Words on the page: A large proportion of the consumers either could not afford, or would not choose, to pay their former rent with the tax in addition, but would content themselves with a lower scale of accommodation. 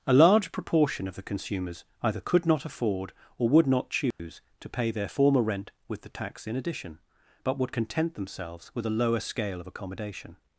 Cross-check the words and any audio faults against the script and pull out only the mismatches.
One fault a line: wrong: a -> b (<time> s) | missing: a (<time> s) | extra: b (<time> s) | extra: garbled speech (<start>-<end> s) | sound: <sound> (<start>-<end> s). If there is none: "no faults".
sound: dropout (4.1-4.2 s)